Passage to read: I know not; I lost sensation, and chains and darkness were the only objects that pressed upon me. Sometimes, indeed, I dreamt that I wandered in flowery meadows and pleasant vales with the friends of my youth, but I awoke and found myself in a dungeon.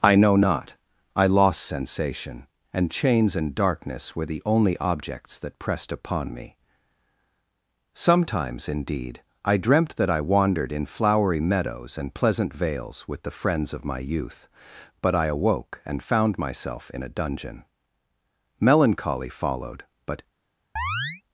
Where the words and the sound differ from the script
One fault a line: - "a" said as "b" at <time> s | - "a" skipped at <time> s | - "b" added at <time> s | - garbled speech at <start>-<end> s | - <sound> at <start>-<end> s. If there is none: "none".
- "Melancholy followed but" added at 18.6 s
- chirp at 20.8-21.2 s